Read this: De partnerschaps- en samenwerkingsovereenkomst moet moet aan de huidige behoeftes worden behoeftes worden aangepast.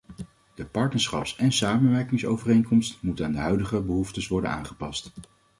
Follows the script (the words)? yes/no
no